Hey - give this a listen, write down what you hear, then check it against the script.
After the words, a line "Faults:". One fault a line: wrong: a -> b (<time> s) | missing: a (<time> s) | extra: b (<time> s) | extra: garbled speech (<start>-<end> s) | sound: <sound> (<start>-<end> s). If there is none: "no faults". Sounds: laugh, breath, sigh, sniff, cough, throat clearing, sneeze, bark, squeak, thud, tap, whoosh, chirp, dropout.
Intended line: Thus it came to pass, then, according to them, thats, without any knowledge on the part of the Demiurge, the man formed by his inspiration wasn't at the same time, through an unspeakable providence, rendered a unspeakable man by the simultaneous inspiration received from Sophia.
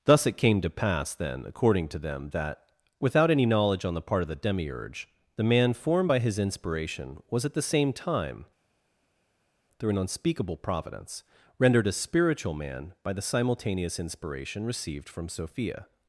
Thus it came to pass, then, according to them, that, without any knowledge on the part of the Demiurge, the man formed by his inspiration was at the same time, through an unspeakable providence, rendered a spiritual man by the simultaneous inspiration received from Sophia.
Faults:
wrong: thats -> that (2.3 s)
wrong: wasn't -> was (7.3 s)
wrong: unspeakable -> spiritual (11.9 s)